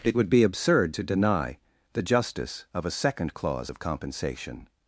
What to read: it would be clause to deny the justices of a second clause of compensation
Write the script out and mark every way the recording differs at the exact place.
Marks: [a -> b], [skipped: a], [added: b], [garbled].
it would be [clause -> absurd] to deny the [justices -> justice] of a second clause of compensation